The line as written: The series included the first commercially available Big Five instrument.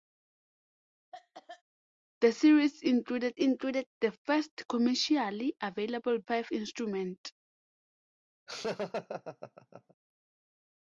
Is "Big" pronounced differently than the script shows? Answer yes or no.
yes